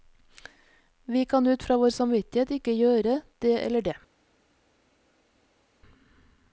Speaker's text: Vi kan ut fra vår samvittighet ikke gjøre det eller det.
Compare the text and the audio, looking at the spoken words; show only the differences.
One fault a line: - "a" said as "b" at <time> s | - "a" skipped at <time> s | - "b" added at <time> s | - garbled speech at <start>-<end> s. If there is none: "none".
none